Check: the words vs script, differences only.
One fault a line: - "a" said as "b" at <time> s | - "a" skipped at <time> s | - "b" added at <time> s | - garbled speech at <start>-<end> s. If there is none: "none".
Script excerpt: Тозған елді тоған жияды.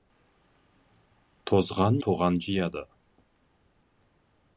- "елді" skipped at 2.0 s